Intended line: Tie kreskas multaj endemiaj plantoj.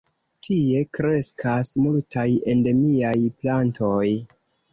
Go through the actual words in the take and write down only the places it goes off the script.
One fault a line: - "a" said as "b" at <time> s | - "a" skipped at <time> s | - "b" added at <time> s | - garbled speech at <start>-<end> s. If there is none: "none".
none